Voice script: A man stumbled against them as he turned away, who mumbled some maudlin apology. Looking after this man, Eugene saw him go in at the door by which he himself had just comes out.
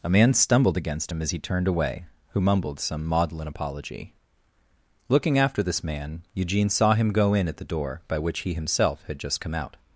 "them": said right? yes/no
no